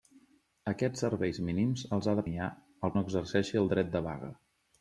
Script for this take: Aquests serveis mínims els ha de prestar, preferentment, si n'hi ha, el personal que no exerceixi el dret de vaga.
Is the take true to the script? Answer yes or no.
no